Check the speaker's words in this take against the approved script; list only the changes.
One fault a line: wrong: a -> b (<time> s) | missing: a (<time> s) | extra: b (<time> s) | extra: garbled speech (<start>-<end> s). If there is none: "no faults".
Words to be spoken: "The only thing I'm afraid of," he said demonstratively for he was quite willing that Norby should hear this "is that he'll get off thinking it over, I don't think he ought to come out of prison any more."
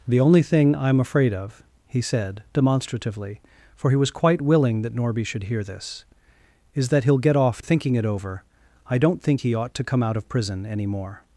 no faults